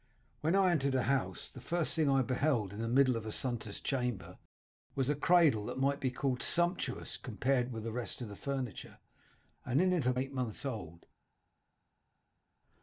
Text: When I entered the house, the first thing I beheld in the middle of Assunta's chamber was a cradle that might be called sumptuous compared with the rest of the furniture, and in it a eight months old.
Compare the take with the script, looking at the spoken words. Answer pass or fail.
pass